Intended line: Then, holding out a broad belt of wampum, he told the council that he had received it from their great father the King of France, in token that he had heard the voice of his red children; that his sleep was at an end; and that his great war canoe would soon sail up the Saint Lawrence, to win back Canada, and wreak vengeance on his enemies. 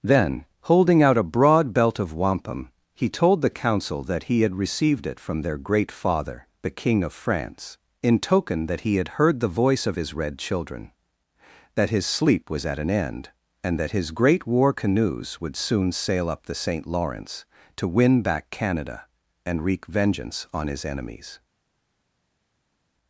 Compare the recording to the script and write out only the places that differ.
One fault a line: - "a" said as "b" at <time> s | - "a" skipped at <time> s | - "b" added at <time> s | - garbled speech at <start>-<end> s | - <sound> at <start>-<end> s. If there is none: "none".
- "canoe" said as "canoes" at 14.7 s